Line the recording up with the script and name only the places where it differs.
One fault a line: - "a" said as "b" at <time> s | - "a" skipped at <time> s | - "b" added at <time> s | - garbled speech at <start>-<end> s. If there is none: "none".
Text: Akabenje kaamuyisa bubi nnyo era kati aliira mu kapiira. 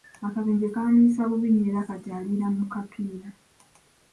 none